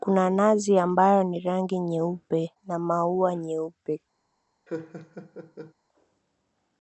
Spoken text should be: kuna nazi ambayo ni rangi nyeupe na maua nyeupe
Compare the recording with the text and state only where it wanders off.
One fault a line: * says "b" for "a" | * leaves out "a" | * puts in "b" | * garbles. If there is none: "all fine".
all fine